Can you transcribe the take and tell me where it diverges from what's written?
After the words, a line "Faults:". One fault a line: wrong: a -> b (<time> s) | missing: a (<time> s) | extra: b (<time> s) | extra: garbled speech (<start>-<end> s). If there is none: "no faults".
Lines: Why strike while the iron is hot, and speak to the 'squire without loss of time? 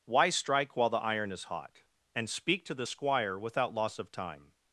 Why strike while the iron is hot, and speak to the 'squire without loss of time?
Faults:
no faults